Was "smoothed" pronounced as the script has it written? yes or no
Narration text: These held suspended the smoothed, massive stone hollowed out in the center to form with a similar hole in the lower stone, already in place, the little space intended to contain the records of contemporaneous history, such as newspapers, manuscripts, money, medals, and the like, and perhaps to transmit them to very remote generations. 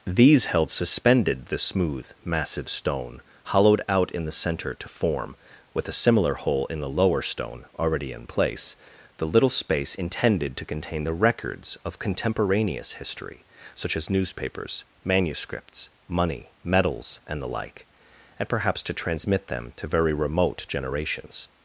no